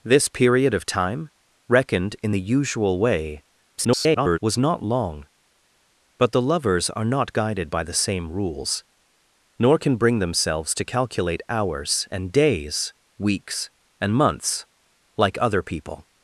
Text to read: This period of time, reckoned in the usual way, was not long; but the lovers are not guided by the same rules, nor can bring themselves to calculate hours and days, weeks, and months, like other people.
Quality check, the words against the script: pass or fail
fail